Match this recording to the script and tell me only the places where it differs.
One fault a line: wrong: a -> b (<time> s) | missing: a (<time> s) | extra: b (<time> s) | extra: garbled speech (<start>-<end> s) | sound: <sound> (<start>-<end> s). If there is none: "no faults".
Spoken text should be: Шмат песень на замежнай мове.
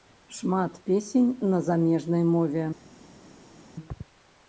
no faults